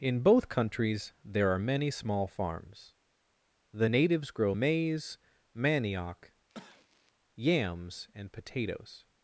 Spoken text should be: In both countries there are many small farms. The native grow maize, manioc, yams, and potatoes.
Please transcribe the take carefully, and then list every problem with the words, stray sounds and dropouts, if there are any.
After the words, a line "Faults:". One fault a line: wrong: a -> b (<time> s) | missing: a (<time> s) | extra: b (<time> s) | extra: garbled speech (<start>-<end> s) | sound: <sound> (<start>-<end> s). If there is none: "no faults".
In both countries there are many small farms. The natives grow maize, manioc, yams, and potatoes.
Faults:
wrong: native -> natives (3.8 s)
sound: cough (6.5-7.1 s)